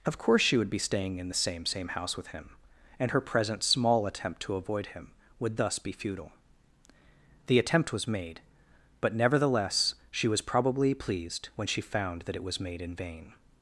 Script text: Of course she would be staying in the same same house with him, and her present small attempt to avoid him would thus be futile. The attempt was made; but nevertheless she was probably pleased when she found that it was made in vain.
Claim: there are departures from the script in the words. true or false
false